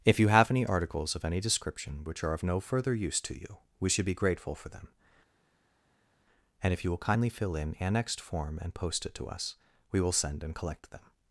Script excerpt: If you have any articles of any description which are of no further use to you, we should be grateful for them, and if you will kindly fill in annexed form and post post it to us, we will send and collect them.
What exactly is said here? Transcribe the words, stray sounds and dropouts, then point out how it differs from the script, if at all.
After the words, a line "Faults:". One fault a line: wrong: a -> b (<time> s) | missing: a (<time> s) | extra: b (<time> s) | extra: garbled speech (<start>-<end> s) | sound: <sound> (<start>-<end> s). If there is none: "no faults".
If you have any articles of any description which are of no further use to you, we should be grateful for them, and if you will kindly fill in annexed form and post it to us, we will send and collect them.
Faults:
missing: post (9.0 s)